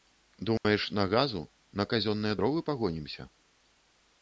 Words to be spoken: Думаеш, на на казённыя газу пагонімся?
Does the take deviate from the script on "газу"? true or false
true